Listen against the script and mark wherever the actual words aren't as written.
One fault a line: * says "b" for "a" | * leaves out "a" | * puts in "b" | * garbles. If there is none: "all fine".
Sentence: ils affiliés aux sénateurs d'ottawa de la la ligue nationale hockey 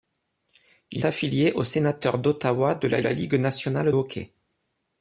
all fine